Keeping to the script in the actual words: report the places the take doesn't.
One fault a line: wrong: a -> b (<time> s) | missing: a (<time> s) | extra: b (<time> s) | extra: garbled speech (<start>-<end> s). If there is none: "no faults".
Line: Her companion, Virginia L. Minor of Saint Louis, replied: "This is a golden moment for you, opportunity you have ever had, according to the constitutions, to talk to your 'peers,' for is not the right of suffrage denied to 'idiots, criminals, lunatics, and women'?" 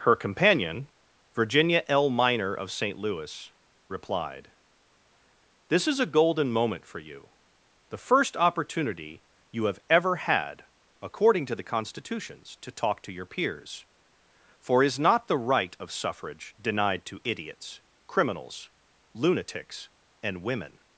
extra: the first (7.9 s)